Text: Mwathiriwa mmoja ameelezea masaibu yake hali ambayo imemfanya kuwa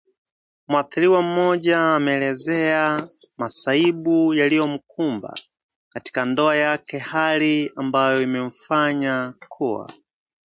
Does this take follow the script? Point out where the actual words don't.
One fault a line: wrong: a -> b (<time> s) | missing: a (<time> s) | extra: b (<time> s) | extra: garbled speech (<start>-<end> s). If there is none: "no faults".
extra: yaliyomkumba katika ndoa (4.3 s)